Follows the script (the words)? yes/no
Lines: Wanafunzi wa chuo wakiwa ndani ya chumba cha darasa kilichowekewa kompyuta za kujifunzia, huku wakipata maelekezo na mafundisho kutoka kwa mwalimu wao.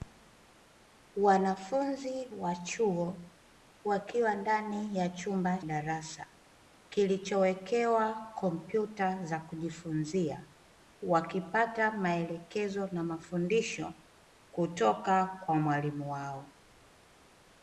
no